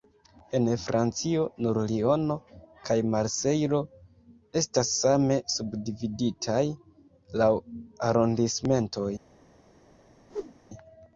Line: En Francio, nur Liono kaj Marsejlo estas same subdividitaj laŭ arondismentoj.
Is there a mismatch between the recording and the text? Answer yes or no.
no